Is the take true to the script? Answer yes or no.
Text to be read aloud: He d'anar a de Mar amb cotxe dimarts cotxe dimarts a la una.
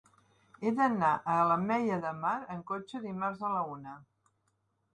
no